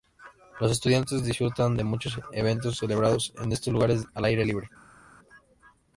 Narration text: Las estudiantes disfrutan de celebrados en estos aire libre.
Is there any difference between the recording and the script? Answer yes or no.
yes